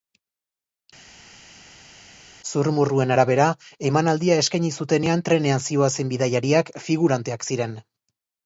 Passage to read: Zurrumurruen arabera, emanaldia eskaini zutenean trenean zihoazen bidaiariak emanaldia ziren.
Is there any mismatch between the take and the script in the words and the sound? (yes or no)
yes